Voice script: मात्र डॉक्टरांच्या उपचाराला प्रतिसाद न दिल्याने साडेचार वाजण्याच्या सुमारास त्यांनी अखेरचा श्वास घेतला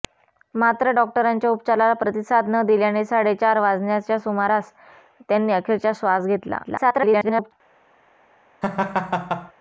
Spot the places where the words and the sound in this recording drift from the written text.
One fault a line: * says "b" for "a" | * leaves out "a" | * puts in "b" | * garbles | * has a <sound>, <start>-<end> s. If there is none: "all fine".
* garbles
* has a laugh, 8.6-9.5 s